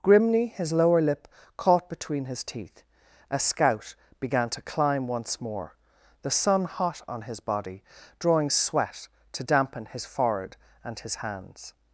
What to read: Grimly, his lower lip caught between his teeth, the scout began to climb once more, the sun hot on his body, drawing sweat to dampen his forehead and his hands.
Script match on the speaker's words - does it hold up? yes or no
no